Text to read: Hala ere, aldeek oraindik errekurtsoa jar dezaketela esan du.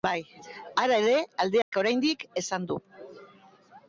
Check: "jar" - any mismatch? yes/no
yes